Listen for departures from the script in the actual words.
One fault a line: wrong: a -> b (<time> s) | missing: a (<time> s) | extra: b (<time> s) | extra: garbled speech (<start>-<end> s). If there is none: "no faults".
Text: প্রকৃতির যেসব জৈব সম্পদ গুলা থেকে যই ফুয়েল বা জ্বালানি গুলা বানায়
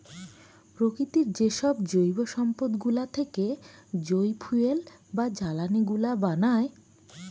no faults